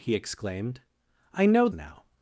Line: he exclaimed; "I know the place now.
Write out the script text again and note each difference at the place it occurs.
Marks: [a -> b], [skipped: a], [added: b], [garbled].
he exclaimed; "I know [skipped: the place] now.